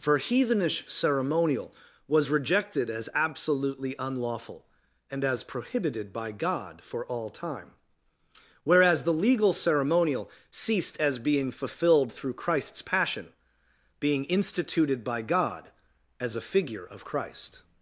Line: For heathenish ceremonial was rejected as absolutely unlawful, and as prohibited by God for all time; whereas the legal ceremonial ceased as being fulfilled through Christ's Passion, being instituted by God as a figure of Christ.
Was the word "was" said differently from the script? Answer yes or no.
no